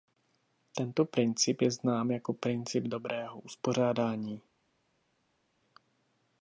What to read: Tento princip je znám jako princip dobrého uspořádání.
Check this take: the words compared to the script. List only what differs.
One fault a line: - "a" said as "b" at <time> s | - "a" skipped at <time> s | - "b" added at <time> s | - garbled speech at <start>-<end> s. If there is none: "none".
none